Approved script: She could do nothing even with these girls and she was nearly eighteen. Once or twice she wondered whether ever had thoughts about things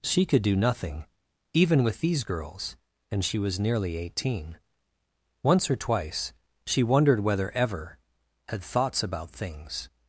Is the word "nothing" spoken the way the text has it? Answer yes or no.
yes